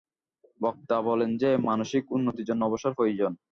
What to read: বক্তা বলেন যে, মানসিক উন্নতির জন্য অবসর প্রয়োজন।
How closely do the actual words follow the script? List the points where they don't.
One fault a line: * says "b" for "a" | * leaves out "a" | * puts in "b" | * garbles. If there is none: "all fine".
all fine